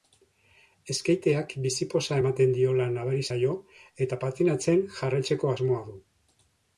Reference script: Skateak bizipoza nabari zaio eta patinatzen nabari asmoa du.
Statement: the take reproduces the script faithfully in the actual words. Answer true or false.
false